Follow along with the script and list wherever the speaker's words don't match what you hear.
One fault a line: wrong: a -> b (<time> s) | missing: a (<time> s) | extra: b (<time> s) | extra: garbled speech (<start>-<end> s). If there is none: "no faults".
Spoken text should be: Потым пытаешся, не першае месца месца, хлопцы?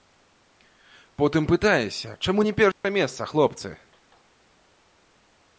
extra: чаму (2.2 s)
missing: месца (3.2 s)